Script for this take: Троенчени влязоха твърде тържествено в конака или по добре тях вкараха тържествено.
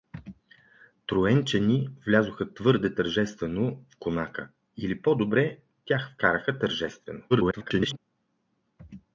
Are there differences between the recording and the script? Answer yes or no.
yes